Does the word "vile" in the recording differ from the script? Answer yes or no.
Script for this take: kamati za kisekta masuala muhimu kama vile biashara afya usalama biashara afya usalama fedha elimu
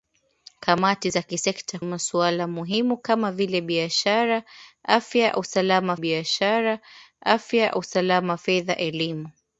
no